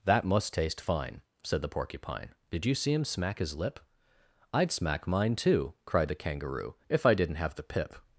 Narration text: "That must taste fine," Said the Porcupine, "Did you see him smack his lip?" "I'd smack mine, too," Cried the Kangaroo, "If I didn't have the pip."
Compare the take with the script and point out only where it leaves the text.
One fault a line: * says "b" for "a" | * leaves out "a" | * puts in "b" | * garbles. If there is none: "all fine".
all fine